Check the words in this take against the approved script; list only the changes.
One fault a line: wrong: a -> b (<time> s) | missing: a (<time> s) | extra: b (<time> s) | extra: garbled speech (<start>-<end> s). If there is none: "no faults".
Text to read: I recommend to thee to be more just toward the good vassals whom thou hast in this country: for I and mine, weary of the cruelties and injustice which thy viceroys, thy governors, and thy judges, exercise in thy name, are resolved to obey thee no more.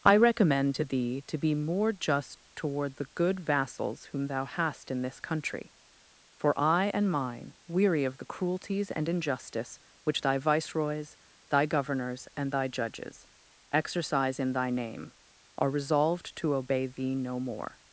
no faults